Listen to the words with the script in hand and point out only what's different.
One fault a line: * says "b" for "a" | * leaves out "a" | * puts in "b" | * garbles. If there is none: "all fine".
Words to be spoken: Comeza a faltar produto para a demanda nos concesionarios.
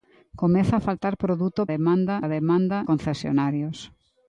* says "demanda" for "para"
* leaves out "nos"